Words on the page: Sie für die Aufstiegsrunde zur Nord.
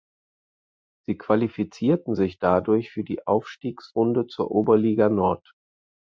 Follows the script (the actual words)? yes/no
no